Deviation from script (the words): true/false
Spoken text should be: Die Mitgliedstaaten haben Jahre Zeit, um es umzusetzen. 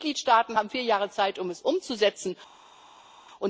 true